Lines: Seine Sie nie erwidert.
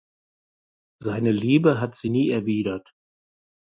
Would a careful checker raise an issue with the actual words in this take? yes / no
yes